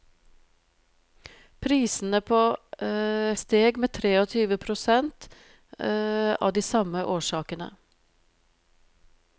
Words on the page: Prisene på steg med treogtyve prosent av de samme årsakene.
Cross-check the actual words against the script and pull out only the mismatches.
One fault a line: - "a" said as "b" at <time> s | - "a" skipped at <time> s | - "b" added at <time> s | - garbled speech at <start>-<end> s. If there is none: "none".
none